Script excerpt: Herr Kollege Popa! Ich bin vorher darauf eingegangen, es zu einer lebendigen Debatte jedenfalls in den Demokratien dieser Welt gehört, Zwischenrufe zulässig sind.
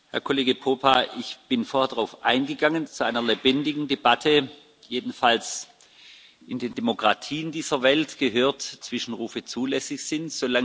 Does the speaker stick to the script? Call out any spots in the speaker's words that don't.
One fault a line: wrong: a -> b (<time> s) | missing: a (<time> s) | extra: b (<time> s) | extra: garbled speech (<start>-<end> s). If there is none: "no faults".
no faults